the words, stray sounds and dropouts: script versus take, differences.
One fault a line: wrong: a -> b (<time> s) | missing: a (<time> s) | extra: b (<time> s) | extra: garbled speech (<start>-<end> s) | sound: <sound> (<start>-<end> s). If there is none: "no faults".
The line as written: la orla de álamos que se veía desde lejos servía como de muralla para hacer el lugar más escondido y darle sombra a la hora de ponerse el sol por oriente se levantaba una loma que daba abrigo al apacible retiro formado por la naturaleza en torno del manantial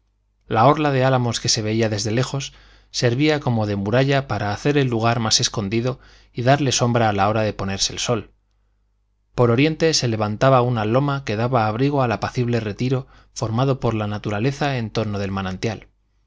no faults